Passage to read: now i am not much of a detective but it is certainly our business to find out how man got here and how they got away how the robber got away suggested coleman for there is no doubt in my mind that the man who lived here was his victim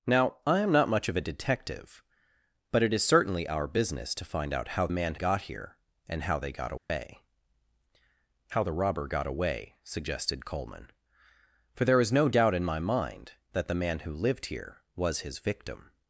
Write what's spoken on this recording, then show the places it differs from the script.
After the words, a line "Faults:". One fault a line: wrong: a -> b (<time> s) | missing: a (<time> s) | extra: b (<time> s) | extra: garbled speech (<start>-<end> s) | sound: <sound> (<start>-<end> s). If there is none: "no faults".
now i am not much of a detective but it is certainly our business to find out how man got here and how they got away how the robber got away suggested coleman for there is no doubt in my mind that the man who lived here was his victim
Faults:
sound: dropout (6.8-6.9 s)